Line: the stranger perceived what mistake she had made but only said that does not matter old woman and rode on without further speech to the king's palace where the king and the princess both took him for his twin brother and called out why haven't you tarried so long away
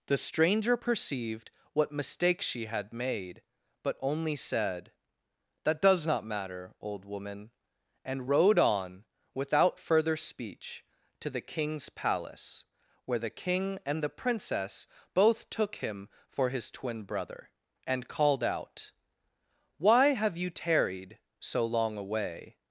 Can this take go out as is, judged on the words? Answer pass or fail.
fail